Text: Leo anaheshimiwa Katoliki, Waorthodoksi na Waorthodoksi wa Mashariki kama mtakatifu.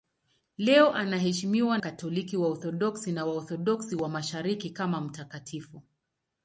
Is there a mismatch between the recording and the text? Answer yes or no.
no